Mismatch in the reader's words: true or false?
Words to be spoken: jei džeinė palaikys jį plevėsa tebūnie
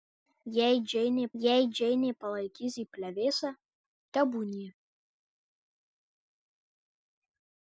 true